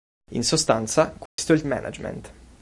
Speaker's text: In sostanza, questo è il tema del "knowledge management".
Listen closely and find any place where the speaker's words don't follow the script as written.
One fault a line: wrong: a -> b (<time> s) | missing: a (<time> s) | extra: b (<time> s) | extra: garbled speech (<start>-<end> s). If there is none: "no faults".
missing: tema del knowledge (1.6 s)